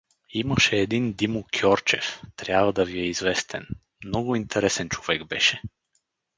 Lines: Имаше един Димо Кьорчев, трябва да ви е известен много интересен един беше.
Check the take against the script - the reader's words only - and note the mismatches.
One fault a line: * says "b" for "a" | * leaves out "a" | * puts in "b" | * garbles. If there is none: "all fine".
* says "човек" for "един"